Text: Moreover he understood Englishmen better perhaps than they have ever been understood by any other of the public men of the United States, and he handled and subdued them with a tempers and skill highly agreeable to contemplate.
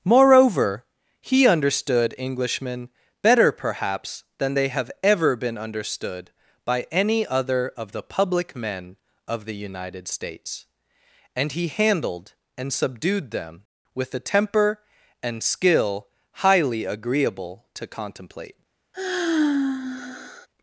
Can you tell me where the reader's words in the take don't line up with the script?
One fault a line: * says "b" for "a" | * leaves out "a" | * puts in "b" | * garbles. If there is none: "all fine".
* says "temper" for "tempers"